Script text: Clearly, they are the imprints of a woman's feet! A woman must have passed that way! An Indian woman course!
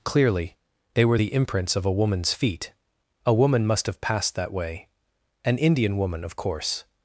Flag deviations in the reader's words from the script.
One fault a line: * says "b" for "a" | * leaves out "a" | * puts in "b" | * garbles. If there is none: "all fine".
* says "were" for "are"
* puts in "of"